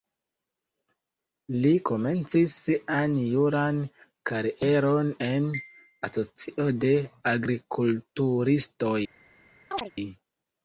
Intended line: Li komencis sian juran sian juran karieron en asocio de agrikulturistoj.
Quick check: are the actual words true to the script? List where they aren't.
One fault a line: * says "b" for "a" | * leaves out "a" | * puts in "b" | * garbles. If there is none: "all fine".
* leaves out "sian juran"